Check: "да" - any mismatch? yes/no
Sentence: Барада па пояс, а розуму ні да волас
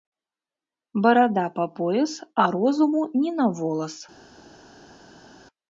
yes